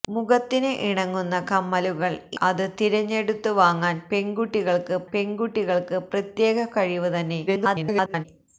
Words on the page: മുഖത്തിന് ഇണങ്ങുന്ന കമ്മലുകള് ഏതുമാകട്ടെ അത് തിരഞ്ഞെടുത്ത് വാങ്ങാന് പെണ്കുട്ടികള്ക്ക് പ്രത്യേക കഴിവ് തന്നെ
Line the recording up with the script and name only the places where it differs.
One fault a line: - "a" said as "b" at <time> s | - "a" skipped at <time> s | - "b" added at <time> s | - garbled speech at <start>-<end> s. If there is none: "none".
- "ഏതുമാകട്ടെ" skipped at 2.2 s
- "പെണ്കുട്ടികള്ക്ക്" added at 5.1 s
- garbled speech at 7.5-8.3 s